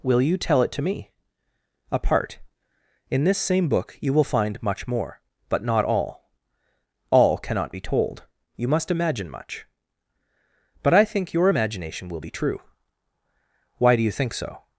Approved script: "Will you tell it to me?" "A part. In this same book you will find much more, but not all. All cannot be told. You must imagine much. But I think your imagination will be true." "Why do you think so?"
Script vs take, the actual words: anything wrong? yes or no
no